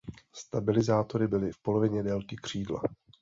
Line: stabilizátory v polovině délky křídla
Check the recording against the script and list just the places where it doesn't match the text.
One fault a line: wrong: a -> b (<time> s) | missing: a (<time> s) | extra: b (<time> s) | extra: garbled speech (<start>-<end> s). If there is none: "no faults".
extra: byly (1.3 s)